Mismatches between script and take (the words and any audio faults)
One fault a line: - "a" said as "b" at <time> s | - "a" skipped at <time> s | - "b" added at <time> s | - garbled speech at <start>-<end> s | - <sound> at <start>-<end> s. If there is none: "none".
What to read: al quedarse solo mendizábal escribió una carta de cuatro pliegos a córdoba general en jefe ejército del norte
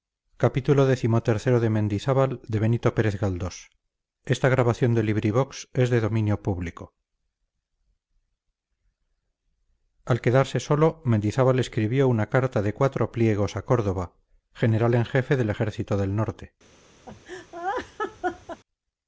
- "del" added at 15.4 s
- laugh at 17.1-18.6 s